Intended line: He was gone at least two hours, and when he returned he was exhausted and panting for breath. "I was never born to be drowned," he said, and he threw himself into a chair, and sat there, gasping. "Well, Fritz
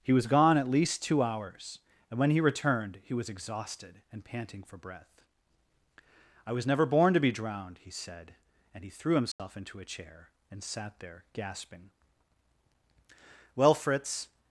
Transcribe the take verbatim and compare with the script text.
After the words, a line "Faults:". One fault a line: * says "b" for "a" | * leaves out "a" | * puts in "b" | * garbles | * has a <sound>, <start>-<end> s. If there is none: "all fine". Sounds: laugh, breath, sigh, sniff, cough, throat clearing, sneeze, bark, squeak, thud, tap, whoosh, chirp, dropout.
He was gone at least two hours, and when he returned he was exhausted and panting for breath. "I was never born to be drowned," he said, and he threw himself into a chair, and sat there, gasping. "Well, Fritz
Faults:
* has a dropout, 9.3-9.4 s